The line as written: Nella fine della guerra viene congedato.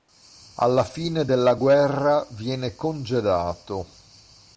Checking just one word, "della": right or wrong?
right